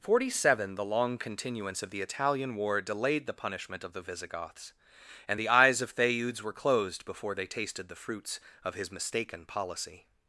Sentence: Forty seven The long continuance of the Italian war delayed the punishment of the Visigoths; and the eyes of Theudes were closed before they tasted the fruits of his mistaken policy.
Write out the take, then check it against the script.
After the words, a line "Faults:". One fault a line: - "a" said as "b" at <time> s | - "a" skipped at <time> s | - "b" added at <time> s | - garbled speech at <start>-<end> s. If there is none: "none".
Forty seven The long continuance of the Italian war delayed the punishment of the Visigoths; and the eyes of Theudes were closed before they tasted the fruits of his mistaken policy.
Faults:
none